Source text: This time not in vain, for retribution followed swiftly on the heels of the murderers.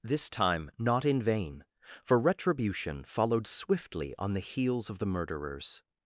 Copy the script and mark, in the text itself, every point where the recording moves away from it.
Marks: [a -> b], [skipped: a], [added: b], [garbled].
This time not in vain, for retribution followed swiftly on the heels of the murderers.